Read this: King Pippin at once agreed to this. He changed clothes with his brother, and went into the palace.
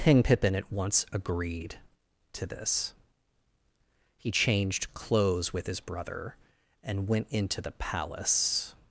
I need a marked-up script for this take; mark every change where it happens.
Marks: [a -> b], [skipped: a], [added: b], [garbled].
King Pippin at once agreed to this. He changed clothes with his brother, and went into the palace.